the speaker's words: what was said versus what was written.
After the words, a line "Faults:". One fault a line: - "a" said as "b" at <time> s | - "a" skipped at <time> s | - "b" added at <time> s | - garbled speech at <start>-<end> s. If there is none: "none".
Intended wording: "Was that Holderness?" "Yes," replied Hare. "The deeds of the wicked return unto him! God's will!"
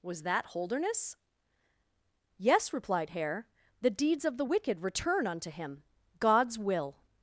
"Was that Holderness?" "Yes," replied Hare. "The deeds of the wicked return unto him! God's will!"
Faults:
none